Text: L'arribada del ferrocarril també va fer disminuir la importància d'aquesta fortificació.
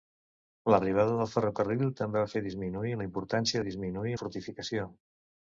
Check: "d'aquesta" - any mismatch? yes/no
yes